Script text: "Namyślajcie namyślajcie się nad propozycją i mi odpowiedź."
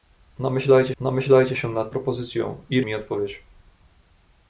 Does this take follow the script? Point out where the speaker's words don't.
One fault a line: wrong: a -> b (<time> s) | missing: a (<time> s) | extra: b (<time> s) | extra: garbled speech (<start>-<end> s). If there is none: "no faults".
no faults